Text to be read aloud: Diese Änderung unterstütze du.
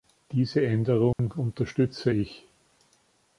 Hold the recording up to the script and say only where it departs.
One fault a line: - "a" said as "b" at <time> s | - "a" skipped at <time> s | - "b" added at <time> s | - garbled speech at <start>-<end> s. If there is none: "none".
- "du" said as "ich" at 2.1 s